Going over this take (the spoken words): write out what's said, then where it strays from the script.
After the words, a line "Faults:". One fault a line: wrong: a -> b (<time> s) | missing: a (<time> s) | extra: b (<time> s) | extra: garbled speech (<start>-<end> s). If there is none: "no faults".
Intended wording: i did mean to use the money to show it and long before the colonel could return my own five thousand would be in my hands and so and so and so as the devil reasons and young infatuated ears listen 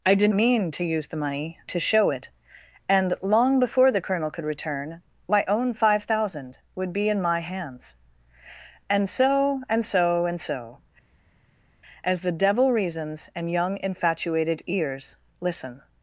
i did mean to use the money to show it and long before the colonel could return my own five thousand would be in my hands and so and so and so as the devil reasons and young infatuated ears listen
Faults:
no faults